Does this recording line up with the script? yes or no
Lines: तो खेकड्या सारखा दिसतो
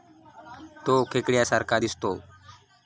yes